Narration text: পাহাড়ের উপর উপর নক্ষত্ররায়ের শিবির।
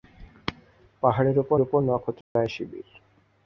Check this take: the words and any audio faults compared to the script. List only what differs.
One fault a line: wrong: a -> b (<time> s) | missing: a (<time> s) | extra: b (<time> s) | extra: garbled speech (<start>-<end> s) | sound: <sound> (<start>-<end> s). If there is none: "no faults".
sound: dropout (2.2-2.4 s)